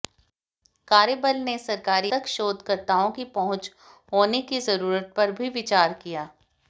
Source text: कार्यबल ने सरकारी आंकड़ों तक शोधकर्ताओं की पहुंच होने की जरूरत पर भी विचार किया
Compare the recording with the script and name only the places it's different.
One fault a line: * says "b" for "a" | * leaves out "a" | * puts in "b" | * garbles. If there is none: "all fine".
* leaves out "आंकड़ों"